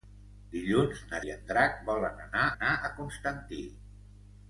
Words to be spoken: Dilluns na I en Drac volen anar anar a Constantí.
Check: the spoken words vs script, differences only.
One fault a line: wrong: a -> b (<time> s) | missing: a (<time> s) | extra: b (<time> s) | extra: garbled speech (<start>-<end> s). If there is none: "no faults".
no faults